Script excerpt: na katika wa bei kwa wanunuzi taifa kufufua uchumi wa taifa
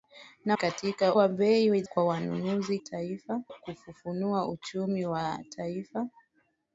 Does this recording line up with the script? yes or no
yes